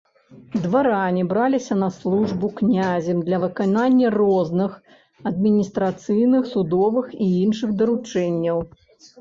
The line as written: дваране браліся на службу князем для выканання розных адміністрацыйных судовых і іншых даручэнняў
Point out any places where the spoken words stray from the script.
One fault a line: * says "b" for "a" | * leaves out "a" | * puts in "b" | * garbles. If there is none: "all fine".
all fine